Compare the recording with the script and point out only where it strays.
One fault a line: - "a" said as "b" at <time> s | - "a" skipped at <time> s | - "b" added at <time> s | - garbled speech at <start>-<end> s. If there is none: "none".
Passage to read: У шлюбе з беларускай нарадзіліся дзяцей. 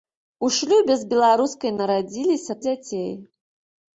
none